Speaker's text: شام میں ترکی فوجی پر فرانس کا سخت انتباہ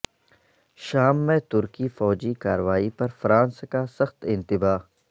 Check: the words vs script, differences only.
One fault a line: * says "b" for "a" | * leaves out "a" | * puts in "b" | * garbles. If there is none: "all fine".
* puts in "کارروائی"